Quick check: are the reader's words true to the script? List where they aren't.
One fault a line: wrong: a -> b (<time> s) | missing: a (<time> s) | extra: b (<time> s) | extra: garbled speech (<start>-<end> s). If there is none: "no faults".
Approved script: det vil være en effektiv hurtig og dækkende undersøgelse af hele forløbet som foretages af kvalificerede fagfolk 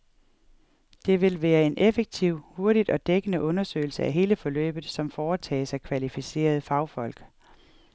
no faults